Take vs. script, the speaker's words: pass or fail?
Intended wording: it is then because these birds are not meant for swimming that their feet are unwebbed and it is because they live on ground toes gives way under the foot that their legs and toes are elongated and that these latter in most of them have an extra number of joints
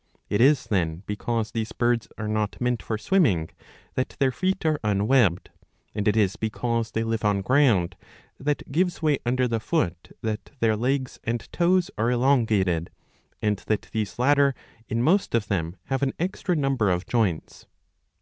fail